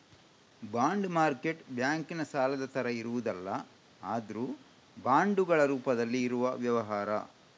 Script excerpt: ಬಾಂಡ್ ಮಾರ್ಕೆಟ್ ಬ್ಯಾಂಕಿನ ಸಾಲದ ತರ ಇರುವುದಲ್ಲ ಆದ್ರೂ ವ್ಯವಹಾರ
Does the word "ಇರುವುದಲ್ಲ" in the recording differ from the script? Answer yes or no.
no